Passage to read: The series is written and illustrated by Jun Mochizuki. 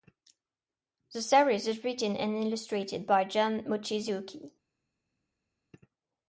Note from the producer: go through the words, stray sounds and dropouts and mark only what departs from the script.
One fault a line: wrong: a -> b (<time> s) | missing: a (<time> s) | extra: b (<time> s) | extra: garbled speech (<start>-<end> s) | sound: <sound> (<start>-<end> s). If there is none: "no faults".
no faults